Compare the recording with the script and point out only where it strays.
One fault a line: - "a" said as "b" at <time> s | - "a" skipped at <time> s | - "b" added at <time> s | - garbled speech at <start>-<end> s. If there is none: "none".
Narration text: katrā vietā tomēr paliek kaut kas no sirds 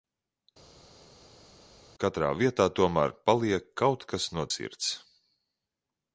none